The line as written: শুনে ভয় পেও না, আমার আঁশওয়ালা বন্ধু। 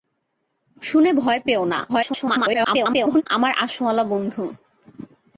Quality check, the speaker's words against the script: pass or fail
fail